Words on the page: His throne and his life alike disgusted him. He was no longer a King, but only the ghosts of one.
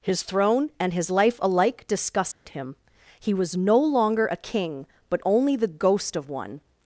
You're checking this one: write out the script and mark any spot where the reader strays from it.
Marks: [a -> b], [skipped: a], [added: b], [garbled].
His throne and his life alike disgusted him. He was no longer a King, but only the [ghosts -> ghost] of one.